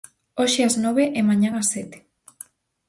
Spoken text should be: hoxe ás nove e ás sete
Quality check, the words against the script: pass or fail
fail